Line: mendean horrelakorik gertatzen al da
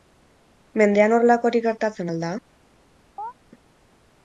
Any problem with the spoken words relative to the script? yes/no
no